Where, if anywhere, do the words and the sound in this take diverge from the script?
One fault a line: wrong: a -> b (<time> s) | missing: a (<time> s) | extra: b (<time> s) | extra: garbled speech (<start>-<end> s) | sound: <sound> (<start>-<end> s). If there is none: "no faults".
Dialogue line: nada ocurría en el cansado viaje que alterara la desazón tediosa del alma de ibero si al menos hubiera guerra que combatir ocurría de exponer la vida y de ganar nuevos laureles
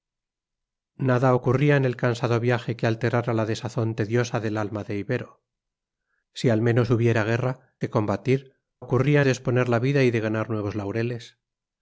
no faults